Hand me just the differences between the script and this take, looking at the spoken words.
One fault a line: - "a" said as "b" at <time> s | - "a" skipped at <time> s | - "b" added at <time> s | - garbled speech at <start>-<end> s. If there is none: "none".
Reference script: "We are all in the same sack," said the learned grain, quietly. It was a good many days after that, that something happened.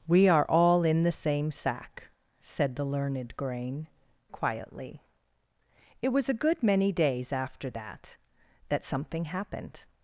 none